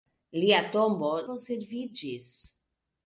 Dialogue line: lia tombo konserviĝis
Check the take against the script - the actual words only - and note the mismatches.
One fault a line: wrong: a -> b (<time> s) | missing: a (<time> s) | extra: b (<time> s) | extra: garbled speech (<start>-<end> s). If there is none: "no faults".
no faults